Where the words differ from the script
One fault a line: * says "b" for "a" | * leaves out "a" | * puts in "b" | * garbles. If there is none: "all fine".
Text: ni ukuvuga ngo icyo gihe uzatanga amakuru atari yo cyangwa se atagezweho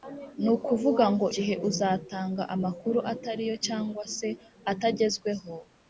* leaves out "icyo"